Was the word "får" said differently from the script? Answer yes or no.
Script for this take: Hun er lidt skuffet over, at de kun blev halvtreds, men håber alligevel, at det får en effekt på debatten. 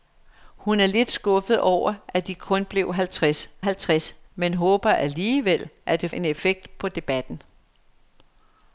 yes